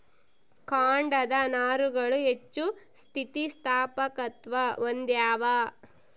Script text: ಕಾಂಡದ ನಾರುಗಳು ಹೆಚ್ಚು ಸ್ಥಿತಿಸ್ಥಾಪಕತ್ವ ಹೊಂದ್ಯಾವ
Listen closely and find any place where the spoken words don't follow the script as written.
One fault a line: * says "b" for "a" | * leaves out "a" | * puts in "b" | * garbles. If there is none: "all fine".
all fine